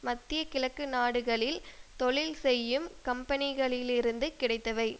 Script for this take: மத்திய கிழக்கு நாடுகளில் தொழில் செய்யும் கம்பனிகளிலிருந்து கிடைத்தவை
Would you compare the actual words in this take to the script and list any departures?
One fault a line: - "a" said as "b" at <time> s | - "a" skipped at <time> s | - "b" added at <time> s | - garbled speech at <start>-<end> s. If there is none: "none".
none